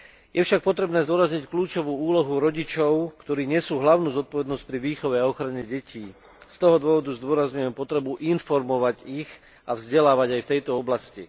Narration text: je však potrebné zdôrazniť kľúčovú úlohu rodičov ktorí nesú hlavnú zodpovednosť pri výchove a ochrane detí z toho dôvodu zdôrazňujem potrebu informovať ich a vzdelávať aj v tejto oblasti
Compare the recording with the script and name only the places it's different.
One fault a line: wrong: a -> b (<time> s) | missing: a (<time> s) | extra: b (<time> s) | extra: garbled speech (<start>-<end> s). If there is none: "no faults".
no faults